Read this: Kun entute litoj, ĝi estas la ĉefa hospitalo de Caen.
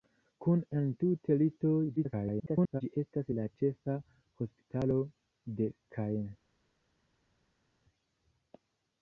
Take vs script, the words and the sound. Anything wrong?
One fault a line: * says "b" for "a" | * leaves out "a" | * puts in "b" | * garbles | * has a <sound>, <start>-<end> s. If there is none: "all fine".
* garbles